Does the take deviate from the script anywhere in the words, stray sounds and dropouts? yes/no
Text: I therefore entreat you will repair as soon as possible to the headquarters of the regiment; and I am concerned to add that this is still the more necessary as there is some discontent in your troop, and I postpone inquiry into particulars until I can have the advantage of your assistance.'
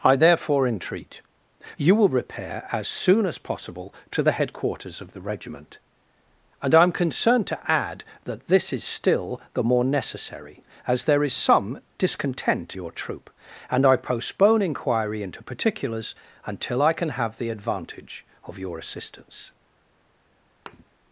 yes